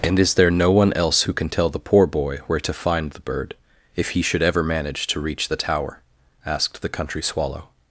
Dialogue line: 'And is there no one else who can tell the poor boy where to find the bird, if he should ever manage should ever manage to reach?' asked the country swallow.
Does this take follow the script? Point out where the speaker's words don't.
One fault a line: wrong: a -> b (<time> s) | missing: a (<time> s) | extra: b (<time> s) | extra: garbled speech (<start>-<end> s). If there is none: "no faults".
wrong: should ever manage to reach -> to reach the tower (5.1 s)